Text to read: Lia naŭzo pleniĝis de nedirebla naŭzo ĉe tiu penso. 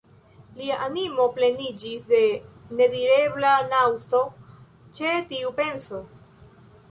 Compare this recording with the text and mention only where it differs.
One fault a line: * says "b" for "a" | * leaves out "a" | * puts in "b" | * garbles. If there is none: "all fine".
* says "animo" for "naŭzo"